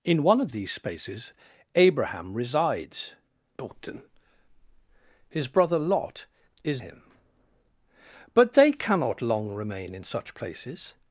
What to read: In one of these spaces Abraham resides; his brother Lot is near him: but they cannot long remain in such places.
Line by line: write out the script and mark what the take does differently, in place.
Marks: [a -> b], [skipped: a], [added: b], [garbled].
In one of these spaces Abraham resides; his brother Lot is [skipped: near] him: but they cannot long remain in such places.